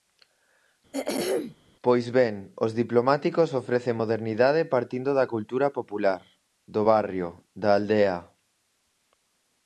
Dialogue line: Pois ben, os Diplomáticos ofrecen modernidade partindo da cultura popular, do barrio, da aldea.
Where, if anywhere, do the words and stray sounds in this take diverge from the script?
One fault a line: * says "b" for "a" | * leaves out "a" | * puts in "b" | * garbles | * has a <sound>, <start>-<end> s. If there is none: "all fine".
* has a throat clearing, 0.9-1.6 s